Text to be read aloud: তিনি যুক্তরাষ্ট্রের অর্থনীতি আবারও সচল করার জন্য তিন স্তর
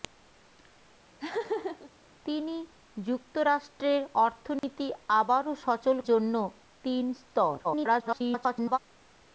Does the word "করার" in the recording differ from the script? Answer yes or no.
yes